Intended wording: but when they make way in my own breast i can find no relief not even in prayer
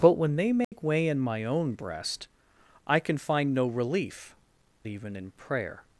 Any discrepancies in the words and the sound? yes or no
yes